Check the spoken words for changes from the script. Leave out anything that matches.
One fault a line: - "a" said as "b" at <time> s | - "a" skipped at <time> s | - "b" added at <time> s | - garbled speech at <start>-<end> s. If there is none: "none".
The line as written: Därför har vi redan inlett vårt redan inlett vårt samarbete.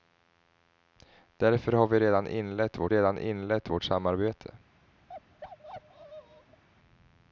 none